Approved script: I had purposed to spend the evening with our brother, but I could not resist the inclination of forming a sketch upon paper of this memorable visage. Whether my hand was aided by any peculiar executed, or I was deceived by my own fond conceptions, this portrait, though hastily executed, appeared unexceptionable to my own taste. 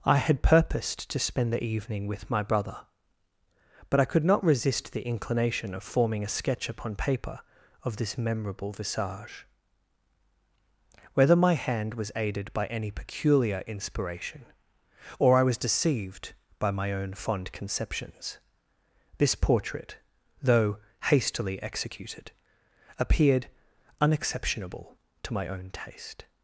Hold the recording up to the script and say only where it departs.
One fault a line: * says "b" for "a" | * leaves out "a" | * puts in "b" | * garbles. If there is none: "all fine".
* says "my" for "our"
* says "inspiration" for "executed"